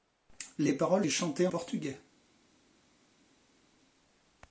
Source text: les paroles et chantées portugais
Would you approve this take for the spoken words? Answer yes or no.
yes